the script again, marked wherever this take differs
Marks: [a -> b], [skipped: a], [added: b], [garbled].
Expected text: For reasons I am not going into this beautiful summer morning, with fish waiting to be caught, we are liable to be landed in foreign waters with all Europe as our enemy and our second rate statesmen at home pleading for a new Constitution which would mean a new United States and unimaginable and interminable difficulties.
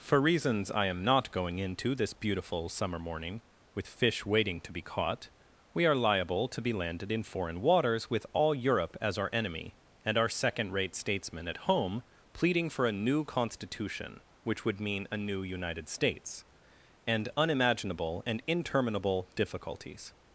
For reasons I am not going into this beautiful summer morning, with fish waiting to be caught, we are liable to be landed in foreign waters with all Europe as our enemy and our second rate statesmen at home pleading for a new Constitution which would mean a new United States and unimaginable and interminable difficulties.